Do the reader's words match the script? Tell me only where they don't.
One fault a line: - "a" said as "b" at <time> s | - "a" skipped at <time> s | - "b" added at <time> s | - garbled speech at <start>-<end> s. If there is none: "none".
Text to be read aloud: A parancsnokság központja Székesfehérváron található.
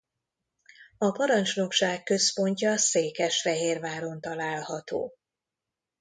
none